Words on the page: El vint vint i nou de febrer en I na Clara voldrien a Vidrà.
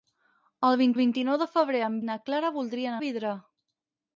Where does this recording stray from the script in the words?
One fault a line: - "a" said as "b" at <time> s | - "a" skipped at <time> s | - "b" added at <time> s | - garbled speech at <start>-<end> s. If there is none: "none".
none